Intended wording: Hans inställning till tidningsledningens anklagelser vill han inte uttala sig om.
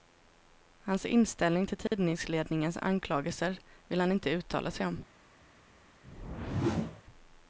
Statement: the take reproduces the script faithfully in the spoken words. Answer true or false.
true